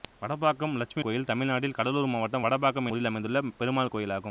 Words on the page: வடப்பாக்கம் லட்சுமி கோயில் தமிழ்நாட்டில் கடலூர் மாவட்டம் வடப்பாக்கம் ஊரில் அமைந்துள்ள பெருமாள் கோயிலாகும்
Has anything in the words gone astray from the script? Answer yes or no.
no